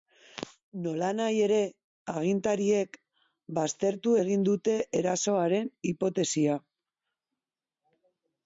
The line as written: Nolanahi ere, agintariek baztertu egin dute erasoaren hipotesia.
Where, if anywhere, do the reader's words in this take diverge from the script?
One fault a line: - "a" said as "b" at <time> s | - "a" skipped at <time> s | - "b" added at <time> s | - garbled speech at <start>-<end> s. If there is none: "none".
none